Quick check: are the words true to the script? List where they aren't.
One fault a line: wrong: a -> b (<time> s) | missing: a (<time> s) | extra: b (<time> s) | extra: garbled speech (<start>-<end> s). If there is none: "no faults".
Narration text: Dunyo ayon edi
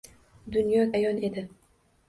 no faults